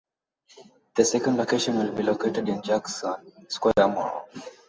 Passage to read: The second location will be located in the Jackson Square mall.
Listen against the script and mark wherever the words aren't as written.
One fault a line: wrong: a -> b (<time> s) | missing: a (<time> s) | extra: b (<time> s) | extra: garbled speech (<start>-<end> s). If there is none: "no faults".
missing: the (2.6 s)